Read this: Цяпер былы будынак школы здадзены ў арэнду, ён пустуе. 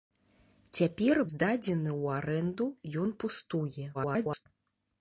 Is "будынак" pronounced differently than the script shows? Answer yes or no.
yes